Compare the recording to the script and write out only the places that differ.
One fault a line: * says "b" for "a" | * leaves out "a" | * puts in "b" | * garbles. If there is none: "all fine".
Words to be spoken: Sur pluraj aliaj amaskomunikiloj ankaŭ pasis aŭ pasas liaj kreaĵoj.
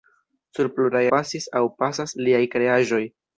* leaves out "aliaj amaskomunikiloj ankaŭ"